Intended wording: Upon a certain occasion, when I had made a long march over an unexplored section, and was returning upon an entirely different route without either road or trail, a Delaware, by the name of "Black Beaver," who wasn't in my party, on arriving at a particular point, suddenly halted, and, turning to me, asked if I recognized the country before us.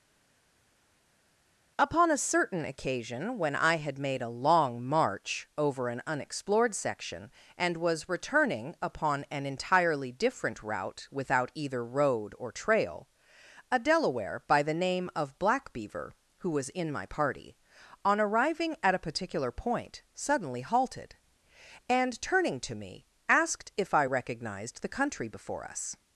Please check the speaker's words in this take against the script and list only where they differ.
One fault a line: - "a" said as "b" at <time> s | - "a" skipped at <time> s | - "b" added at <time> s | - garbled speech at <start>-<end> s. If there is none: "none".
- "wasn't" said as "was" at 16.5 s